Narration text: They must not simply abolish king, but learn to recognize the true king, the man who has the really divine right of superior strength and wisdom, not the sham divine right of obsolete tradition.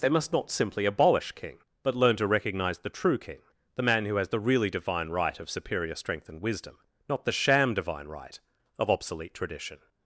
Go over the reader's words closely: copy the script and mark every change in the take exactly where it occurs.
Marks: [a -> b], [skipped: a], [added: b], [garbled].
They must not simply abolish king, but learn to recognize the true king, the man who has the really divine right of superior strength and wisdom, not the sham divine right of obsolete tradition.